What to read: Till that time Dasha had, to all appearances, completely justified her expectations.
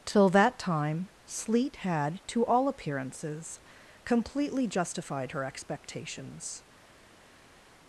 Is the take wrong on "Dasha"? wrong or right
wrong